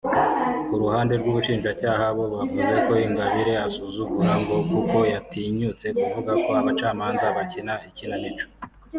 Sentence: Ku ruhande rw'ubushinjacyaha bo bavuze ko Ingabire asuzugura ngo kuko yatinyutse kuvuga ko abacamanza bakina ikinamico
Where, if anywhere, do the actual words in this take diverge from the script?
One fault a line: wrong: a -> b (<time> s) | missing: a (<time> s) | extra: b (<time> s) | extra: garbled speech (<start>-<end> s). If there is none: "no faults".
no faults